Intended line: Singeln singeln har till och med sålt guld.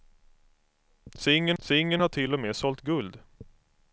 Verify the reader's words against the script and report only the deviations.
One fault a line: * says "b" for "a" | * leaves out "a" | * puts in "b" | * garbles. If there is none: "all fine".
all fine